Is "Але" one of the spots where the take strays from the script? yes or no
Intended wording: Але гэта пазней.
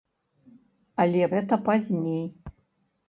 no